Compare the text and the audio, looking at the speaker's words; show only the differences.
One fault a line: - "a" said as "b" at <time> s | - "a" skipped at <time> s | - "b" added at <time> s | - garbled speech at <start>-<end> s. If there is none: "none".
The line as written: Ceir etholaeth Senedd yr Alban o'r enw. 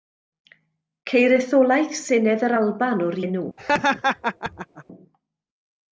none